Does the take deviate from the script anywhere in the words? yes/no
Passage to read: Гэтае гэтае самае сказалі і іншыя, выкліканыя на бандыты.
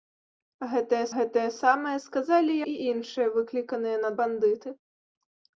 no